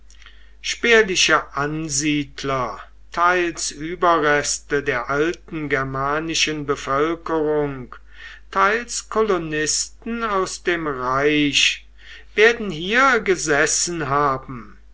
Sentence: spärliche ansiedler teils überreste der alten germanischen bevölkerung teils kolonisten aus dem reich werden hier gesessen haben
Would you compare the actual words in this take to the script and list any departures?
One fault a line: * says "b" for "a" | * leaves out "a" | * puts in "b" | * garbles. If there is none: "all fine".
all fine